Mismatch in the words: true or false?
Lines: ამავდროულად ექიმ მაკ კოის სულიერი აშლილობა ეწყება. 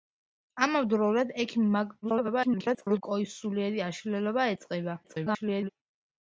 true